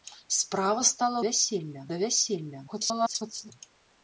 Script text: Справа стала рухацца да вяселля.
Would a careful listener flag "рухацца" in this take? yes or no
yes